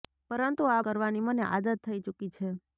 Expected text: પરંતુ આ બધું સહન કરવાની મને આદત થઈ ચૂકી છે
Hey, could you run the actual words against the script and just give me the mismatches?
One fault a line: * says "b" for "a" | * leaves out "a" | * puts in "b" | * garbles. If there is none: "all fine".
* leaves out "બધું સહન"